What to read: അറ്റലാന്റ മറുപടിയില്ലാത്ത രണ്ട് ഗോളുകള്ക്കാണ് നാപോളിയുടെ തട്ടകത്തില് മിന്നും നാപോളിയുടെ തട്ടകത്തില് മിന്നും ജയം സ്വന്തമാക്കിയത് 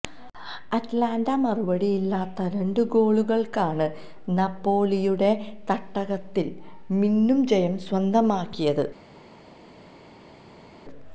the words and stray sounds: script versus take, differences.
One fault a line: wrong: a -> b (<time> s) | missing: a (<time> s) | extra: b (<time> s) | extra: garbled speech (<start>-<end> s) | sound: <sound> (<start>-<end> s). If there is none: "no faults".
missing: നാപോളിയുടെ തട്ടകത്തില് മിന്നും (7.4 s)